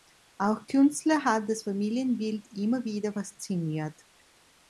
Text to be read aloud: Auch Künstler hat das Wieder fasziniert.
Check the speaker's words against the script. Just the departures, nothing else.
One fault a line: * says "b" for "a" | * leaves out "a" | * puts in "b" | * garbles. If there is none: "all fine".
* puts in "Familienbild immer"